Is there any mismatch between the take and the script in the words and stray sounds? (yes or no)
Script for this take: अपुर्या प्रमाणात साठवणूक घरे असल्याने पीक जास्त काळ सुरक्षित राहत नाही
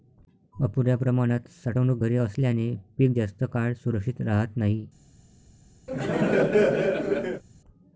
yes